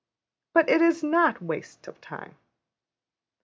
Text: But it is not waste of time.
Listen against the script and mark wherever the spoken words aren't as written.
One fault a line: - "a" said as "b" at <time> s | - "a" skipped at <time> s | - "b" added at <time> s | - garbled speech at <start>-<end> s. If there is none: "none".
none